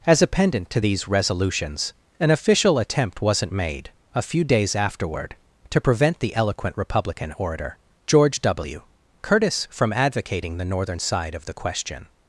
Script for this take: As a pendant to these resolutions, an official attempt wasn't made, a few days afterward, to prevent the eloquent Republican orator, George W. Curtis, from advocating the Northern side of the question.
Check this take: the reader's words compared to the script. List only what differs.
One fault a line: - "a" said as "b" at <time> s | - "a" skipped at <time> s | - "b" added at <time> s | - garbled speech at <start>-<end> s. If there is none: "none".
none